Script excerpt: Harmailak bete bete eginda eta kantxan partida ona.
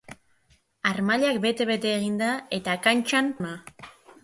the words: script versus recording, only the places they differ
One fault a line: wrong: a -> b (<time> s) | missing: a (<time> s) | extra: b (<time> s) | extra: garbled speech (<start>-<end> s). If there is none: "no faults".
missing: partida (3.3 s)